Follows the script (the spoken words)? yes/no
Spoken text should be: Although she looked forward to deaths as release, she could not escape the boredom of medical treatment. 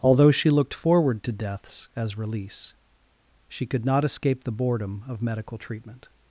yes